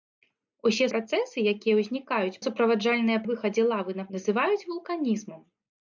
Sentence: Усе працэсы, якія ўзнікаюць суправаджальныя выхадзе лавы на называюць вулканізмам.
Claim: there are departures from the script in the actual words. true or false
false